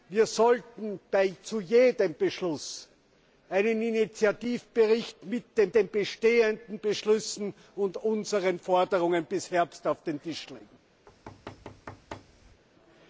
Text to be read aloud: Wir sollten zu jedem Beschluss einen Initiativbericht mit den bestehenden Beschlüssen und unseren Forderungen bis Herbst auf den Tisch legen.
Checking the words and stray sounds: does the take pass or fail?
fail